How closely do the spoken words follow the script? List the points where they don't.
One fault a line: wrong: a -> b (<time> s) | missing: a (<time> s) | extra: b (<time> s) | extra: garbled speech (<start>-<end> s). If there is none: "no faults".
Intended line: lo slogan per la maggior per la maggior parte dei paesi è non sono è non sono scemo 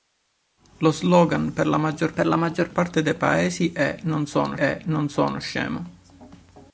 no faults